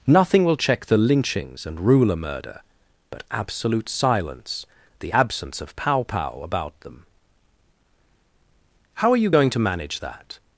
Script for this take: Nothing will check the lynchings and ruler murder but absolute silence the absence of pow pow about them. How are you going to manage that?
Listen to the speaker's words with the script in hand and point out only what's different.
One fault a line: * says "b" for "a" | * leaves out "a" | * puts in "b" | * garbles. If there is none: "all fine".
all fine